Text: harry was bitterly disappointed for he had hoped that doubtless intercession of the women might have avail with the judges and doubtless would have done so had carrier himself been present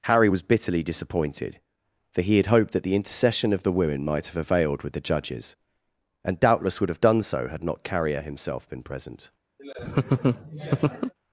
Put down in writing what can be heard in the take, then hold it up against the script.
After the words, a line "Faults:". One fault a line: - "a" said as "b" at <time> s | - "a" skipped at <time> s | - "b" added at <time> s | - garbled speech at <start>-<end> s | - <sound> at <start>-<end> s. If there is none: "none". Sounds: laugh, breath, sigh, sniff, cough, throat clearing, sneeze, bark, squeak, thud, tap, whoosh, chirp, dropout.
harry was bitterly disappointed for he had hoped that the intercession of the women might have availed with the judges and doubtless would have done so had not carrier himself been present
Faults:
- "doubtless" said as "the" at 2.8 s
- "avail" said as "availed" at 4.4 s
- "not" added at 7.6 s
- laugh at 9.6-11.1 s